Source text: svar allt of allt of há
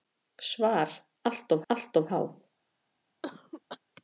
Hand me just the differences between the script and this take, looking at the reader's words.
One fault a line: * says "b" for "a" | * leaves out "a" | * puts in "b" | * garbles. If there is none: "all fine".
all fine